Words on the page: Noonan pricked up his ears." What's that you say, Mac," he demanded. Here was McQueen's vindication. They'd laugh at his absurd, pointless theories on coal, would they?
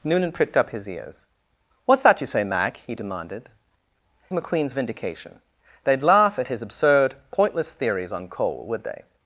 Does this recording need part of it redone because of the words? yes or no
yes